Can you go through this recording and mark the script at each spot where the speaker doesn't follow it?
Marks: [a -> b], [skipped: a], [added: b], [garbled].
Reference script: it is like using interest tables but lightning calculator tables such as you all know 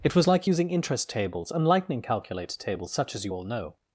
it [is -> was] like using interest tables [but -> and] lightning calculator tables such as you all know